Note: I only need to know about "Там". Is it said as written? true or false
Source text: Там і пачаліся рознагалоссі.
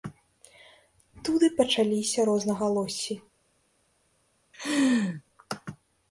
false